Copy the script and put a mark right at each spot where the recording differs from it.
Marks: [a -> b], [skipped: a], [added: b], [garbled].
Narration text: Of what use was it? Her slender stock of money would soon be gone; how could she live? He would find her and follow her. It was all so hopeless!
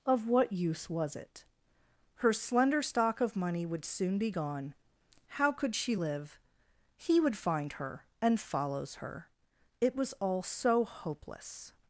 Of what use was it? Her slender stock of money would soon be gone; how could she live? He would find her and [follow -> follows] her. It was all so hopeless!